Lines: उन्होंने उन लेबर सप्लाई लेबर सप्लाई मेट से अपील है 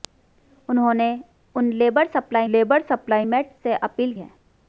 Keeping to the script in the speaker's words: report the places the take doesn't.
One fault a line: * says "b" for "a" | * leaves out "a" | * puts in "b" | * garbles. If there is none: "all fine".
all fine